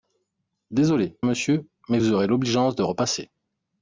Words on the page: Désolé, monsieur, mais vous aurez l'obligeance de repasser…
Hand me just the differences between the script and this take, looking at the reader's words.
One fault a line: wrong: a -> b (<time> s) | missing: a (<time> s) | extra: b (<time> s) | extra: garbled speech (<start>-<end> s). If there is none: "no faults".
no faults